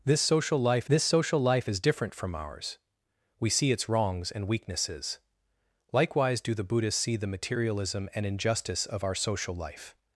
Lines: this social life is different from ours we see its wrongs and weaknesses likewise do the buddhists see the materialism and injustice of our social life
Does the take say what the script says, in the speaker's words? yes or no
no